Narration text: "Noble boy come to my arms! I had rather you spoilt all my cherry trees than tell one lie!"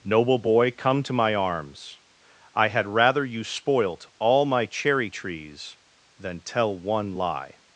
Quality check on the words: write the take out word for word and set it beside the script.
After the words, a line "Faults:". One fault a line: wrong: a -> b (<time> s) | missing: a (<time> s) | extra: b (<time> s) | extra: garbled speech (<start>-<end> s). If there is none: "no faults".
"Noble boy come to my arms! I had rather you spoilt all my cherry trees than tell one lie!"
Faults:
no faults